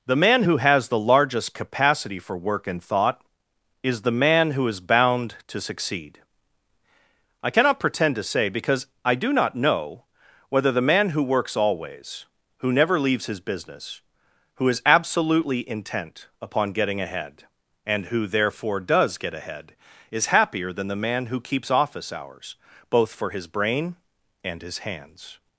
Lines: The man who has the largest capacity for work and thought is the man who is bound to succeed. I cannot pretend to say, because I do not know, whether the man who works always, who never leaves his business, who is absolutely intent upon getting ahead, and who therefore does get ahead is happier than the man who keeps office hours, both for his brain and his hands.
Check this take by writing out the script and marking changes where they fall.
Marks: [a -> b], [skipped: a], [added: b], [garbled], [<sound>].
The man who has the largest capacity for work and thought is the man who is bound to succeed. I cannot pretend to say, because I do not know, whether the man who works always, who never leaves his business, who is absolutely intent upon getting ahead, and who therefore does get ahead is happier than the man who keeps office hours, both for his brain and his hands.